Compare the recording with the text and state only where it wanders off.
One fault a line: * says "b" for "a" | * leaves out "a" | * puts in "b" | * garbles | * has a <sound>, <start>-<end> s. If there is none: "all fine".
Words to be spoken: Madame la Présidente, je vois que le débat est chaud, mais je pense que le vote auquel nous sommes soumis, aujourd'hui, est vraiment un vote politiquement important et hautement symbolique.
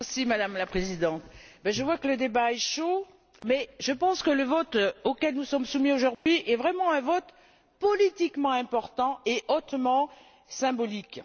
* has a dropout, 6.1-6.3 s